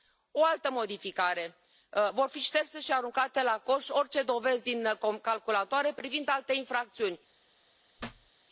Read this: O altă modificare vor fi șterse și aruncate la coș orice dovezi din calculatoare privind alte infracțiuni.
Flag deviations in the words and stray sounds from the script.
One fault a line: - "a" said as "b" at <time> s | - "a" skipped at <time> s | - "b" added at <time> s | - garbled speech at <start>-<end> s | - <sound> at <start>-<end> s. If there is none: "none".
- thud at 8.0-8.3 s